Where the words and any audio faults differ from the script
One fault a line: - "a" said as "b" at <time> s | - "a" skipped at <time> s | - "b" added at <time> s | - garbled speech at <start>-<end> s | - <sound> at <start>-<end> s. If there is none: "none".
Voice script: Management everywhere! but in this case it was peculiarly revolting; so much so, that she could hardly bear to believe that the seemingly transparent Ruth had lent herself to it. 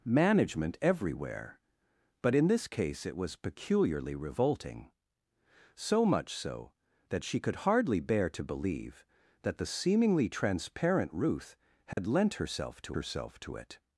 - dropout at 11.9-12.0 s
- "herself to" added at 12.9 s